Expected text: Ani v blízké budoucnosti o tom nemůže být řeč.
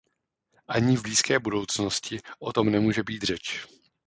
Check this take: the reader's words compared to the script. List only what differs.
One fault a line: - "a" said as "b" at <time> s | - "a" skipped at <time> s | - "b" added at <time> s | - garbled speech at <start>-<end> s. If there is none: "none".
none